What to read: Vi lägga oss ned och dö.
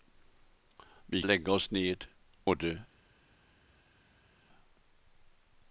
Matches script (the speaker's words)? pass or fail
pass